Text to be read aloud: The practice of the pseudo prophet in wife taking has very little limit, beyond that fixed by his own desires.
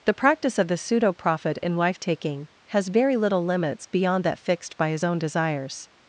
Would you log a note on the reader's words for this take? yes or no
yes